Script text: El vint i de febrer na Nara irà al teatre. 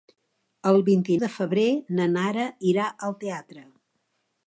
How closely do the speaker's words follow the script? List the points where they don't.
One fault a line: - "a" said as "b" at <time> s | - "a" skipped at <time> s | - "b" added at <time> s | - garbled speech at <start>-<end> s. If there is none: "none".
none